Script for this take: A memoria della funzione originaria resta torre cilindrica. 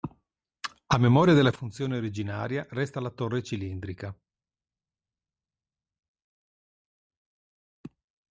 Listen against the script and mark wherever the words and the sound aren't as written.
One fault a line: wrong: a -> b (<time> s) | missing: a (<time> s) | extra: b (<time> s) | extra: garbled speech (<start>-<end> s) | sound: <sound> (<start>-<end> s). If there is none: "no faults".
extra: la (3.0 s)